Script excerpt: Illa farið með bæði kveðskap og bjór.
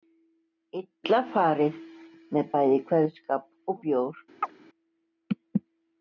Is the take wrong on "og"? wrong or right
right